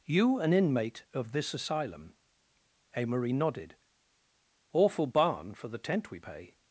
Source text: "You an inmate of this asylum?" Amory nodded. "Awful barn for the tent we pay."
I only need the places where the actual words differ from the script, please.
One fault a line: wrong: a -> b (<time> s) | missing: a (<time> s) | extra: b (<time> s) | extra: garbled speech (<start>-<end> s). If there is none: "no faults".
no faults